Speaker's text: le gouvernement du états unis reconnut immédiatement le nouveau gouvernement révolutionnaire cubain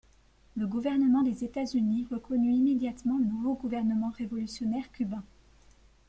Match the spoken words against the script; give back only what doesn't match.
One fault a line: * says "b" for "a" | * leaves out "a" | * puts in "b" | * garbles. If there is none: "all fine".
* says "des" for "du"